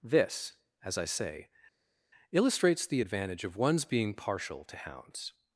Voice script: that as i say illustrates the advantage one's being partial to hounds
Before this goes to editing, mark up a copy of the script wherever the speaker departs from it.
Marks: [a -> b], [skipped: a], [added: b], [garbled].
[that -> this] as i say illustrates the advantage [added: of] one's being partial to hounds